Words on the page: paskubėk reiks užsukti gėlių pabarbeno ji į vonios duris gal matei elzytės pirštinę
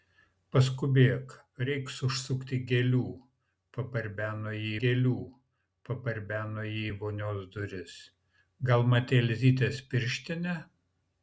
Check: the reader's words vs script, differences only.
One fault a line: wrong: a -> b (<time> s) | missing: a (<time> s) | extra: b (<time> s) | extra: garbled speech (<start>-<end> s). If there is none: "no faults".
extra: gėlių pabarbeno ji (4.8 s)